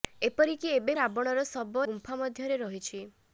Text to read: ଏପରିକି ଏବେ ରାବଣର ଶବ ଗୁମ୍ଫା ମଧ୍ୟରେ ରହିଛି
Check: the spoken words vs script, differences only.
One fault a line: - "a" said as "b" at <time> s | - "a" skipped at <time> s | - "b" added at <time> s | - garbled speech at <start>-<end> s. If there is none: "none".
none